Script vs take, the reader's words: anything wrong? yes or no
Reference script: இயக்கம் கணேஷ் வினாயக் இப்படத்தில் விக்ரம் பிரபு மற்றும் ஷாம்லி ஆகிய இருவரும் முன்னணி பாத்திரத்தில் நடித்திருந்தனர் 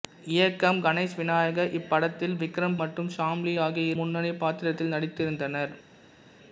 yes